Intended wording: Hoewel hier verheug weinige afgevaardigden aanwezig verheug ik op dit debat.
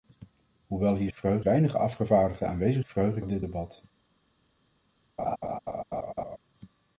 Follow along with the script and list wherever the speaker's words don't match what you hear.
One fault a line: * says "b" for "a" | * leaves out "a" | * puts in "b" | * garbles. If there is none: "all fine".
all fine